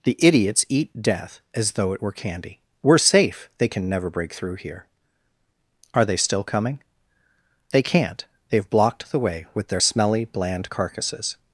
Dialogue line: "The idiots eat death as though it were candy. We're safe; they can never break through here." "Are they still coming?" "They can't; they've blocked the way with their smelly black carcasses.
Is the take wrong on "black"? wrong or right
wrong